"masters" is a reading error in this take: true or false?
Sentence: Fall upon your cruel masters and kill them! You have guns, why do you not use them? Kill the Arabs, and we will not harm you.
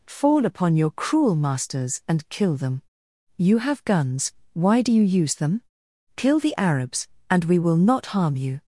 false